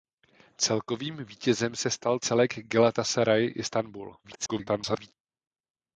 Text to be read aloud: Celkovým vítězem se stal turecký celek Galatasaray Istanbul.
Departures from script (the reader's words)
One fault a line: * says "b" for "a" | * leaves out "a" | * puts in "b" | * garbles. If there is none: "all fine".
* leaves out "turecký"
* garbles